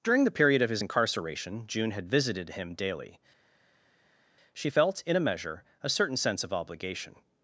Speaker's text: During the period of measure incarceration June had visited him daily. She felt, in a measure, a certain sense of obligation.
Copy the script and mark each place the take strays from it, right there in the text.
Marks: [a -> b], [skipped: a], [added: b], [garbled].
During the period of [measure -> his] incarceration June had visited him daily. She felt, in a measure, a certain sense of obligation.